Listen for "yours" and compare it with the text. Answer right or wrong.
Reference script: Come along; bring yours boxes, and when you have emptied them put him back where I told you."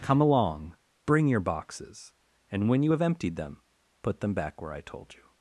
wrong